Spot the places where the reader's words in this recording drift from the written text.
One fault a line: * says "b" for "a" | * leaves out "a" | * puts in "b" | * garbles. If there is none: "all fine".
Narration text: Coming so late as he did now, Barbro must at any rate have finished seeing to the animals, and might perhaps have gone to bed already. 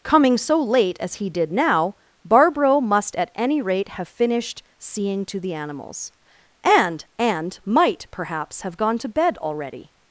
* puts in "and"